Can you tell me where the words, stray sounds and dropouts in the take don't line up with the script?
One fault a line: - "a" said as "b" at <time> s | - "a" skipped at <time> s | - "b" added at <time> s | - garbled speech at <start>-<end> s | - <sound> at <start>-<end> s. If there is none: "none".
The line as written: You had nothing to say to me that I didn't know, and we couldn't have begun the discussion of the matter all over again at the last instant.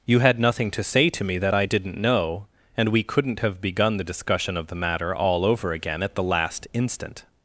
none